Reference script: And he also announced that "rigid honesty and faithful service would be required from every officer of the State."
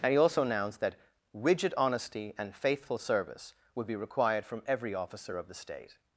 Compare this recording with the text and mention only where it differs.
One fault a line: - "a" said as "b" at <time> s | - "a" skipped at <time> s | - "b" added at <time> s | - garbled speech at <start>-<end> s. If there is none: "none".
none